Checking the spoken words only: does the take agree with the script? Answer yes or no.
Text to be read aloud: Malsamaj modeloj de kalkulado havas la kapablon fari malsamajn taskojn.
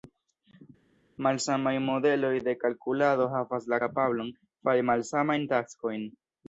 yes